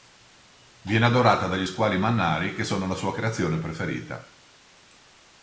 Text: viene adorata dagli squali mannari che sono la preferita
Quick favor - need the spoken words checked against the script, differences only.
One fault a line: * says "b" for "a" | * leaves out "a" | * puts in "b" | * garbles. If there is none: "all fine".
* puts in "sua creazione"